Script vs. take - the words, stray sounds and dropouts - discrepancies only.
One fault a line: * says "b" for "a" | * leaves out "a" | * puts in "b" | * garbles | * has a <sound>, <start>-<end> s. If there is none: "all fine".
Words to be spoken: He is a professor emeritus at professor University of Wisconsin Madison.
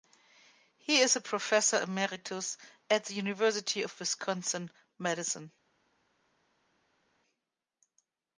* says "the" for "professor"